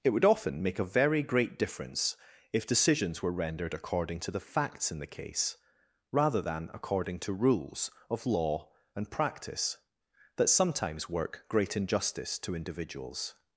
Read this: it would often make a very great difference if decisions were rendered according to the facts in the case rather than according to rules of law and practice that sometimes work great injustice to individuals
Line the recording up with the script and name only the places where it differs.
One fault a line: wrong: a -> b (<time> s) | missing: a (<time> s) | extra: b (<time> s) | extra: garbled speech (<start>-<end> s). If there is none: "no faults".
no faults